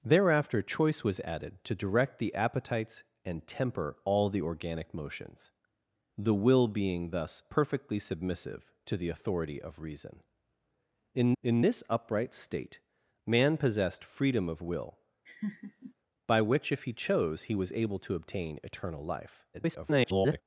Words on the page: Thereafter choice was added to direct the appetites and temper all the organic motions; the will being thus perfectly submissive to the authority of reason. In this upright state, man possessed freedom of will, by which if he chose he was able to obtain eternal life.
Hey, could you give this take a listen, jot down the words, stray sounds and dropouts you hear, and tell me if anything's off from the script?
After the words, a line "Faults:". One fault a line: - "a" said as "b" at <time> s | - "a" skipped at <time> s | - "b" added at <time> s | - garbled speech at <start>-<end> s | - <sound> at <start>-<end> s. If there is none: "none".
Thereafter choice was added to direct the appetites and temper all the organic motions; the will being thus perfectly submissive to the authority of reason. In in this upright state, man possessed freedom of will, by which if he chose he was able to obtain eternal life. [garbled]
Faults:
- "in" added at 11.4 s
- laugh at 15.3-15.9 s
- garbled speech at 19.5-20.4 s